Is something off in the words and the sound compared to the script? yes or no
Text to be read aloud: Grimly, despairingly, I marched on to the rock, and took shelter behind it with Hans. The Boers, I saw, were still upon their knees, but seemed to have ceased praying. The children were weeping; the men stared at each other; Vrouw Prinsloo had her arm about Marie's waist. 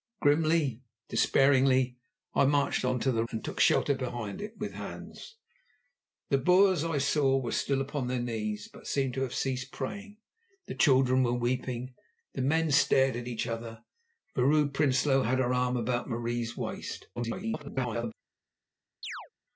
yes